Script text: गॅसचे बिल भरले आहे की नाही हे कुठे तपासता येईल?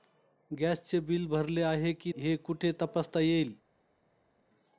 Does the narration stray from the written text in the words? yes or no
yes